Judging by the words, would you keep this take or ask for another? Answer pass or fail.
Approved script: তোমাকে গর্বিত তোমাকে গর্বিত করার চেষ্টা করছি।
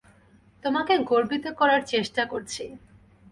fail